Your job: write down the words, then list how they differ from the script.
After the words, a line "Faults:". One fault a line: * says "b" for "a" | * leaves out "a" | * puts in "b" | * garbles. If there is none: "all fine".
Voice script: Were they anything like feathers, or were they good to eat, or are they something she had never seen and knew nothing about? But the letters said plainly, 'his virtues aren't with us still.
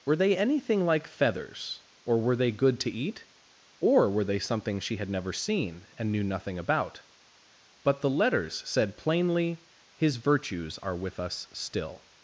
Were they anything like feathers, or were they good to eat, or were they something she had never seen and knew nothing about? But the letters said plainly, 'his virtues are with us still.
Faults:
* says "were" for "are"
* says "are" for "aren't"